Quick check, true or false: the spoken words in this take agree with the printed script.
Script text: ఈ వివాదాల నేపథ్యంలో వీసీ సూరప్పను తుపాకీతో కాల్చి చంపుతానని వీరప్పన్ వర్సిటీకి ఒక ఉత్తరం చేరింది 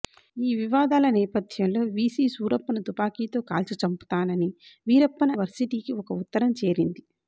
true